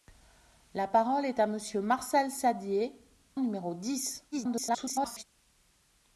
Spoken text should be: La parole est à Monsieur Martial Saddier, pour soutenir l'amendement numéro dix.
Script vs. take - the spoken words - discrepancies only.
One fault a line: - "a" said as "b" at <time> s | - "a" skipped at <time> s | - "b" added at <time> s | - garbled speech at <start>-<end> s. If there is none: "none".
- "pour soutenir l'amendement" skipped at 3.0 s
- garbled speech at 4.3-5.2 s